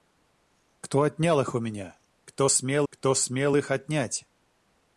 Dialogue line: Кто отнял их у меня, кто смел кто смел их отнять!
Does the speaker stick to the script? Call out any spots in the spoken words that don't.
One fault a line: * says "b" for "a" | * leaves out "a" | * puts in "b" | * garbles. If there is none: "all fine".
all fine